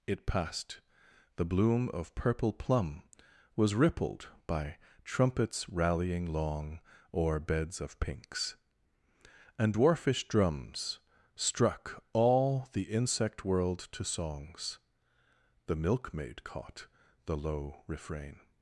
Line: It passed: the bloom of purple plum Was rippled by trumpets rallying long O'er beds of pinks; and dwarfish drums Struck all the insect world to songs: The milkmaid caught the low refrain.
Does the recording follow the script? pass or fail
pass